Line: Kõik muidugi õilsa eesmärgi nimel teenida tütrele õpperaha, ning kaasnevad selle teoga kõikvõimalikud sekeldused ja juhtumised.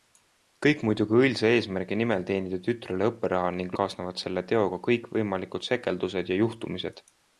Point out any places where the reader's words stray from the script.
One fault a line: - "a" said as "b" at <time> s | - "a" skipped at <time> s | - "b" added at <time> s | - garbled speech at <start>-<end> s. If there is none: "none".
none